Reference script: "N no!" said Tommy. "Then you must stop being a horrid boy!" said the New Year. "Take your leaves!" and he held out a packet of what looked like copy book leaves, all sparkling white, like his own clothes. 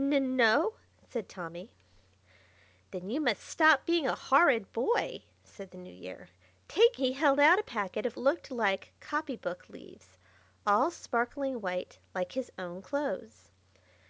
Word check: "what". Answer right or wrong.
wrong